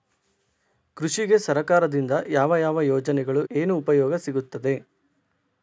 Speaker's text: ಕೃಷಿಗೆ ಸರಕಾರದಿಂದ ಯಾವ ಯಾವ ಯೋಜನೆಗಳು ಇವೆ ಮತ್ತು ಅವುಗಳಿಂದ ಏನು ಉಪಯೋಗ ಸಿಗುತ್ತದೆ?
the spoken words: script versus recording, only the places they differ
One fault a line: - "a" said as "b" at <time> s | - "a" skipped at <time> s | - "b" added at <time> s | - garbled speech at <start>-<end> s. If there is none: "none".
- "ಇವೆ ಮತ್ತು ಅವುಗಳಿಂದ" skipped at 3.5 s